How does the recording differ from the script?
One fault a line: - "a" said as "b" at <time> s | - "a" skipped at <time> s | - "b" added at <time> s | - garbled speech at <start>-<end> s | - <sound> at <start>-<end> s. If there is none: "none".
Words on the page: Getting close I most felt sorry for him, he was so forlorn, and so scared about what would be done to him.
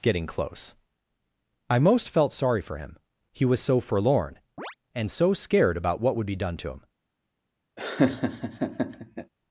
- chirp at 4.6-4.8 s
- laugh at 7.8-9.3 s